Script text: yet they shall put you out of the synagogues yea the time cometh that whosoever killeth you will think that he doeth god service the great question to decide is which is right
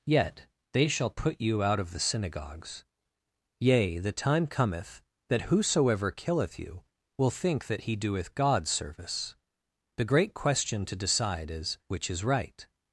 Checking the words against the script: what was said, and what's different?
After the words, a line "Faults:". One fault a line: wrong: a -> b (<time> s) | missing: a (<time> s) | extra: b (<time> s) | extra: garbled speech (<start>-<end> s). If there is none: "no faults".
yet they shall put you out of the synagogues yea the time cometh that whosoever killeth you will think that he doeth god service the great question to decide is which is right
Faults:
no faults